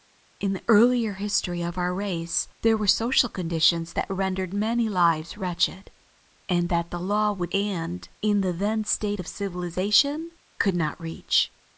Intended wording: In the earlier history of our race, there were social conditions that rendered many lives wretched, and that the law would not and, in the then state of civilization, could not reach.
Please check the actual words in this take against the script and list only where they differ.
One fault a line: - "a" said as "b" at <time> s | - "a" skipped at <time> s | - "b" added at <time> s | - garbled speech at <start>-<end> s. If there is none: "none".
- "not" skipped at 7.5 s